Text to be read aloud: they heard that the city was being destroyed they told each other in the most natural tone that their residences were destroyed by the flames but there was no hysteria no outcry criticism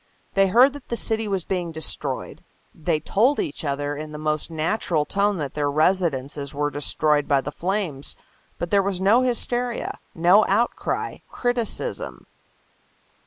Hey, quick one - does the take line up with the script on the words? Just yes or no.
yes